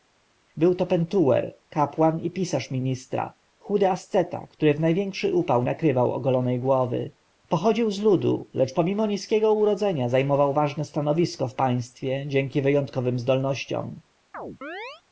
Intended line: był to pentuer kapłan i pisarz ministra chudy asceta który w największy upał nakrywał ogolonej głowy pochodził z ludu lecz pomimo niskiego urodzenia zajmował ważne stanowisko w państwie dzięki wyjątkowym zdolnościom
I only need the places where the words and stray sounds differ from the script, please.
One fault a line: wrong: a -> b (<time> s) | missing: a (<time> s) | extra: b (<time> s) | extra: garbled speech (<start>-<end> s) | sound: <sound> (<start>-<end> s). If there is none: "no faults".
sound: chirp (14.3-15.0 s)